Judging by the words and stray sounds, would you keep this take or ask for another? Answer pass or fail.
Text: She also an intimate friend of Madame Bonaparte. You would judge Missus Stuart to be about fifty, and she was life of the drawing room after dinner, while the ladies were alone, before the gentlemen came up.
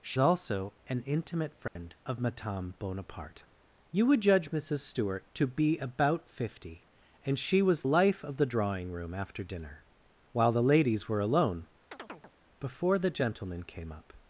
fail